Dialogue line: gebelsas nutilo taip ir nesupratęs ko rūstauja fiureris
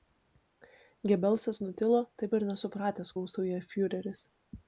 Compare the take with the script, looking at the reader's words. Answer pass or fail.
fail